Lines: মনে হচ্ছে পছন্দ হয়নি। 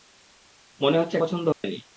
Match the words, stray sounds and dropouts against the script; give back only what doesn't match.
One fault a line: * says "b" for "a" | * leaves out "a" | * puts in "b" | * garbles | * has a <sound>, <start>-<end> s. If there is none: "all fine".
* has a dropout, 1.5-1.6 s